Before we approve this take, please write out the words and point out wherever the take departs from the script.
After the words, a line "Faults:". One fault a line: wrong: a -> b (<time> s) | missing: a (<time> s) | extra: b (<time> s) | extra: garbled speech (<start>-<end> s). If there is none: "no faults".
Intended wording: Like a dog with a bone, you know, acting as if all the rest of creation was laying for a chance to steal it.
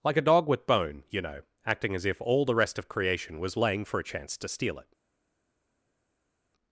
Like a dog with bone, you know, acting as if all the rest of creation was laying for a chance to steal it.
Faults:
missing: a (0.7 s)